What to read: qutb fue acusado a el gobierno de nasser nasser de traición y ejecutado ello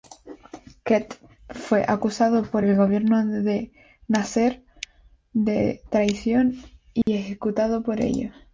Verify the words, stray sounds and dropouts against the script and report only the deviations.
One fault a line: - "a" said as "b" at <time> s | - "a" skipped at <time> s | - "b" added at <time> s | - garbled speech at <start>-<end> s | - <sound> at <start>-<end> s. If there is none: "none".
- "a" said as "por" at 2.4 s
- "nasser" skipped at 4.6 s
- dropout at 7.0-7.1 s
- "por" added at 7.8 s